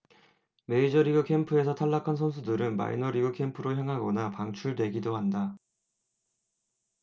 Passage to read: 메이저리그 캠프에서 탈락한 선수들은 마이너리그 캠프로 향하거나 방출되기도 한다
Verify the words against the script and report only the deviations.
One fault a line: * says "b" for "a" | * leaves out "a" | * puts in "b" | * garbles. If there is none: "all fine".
all fine